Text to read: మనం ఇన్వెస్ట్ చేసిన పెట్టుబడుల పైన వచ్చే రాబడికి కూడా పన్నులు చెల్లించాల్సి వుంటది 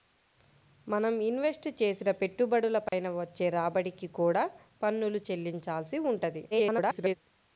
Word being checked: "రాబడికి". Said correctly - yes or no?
yes